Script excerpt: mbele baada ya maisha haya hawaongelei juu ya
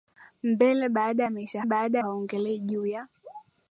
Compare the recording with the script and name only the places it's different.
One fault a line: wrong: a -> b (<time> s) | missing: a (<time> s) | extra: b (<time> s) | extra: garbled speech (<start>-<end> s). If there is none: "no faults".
wrong: haya -> baada (1.6 s)